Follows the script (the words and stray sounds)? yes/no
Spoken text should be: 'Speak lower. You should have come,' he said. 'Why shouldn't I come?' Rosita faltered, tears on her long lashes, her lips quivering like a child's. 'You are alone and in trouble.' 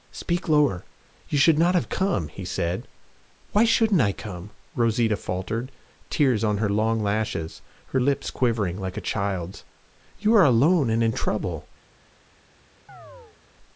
no